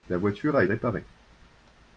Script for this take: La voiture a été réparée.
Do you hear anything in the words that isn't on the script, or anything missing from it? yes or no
yes